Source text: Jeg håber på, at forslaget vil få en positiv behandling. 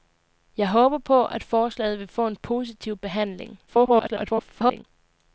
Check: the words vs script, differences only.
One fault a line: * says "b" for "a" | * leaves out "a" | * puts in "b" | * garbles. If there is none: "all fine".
* garbles